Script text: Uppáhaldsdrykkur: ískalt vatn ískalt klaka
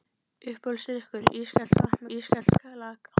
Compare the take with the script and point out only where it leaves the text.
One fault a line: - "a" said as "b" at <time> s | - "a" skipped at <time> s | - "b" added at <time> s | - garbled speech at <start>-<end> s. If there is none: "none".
none